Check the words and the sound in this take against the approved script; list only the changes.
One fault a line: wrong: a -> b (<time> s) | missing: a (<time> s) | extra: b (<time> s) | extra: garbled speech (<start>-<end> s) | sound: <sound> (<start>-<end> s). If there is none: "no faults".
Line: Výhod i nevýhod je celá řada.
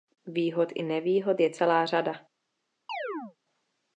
sound: chirp (2.9-3.4 s)